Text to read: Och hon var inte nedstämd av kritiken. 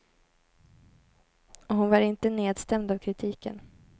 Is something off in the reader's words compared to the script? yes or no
no